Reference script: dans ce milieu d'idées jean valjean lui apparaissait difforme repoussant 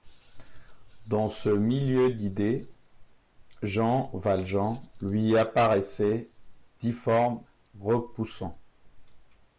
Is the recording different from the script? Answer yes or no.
no